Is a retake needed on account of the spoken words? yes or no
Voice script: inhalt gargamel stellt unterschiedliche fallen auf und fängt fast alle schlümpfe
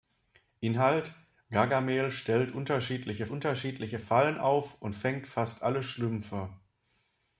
yes